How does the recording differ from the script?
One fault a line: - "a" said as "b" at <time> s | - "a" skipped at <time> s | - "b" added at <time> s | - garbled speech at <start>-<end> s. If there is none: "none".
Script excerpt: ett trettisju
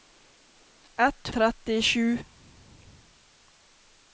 none